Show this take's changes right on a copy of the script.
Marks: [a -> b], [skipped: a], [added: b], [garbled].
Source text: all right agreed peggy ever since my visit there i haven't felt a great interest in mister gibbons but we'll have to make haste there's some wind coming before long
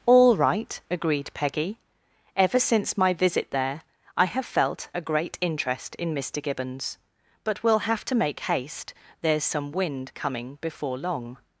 all right agreed peggy ever since my visit there i [haven't -> have] felt a great interest in mister gibbons but we'll have to make haste there's some wind coming before long